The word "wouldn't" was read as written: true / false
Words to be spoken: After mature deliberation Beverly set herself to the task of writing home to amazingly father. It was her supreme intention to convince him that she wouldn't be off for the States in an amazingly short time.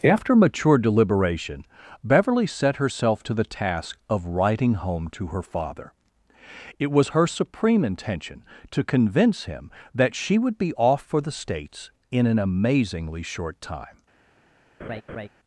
false